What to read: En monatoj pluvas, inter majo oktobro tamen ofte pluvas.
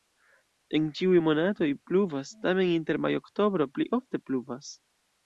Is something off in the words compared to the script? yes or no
yes